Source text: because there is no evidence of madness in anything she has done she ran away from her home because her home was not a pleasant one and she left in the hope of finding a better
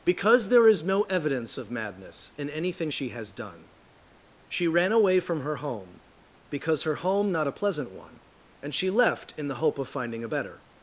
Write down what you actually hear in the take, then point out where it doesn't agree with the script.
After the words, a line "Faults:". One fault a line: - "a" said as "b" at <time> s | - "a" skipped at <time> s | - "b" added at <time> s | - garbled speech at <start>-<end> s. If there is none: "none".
because there is no evidence of madness in anything she has done she ran away from her home because her home not a pleasant one and she left in the hope of finding a better
Faults:
- "was" skipped at 7.3 s